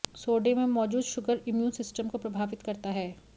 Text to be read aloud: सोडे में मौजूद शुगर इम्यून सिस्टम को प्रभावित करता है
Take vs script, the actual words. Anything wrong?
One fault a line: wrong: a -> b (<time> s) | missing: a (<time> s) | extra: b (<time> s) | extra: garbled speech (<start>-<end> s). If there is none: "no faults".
no faults